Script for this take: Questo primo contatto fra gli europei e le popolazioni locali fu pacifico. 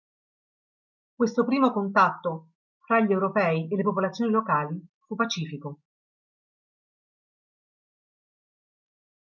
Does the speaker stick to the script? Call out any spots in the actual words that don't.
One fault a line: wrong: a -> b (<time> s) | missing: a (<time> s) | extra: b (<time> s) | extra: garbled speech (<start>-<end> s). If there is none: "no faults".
no faults